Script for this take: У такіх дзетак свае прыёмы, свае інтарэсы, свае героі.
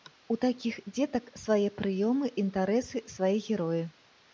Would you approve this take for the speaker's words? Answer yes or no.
no